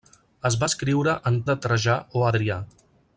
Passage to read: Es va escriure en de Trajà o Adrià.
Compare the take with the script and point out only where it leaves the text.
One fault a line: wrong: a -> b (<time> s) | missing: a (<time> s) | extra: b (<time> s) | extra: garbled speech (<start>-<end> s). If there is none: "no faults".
no faults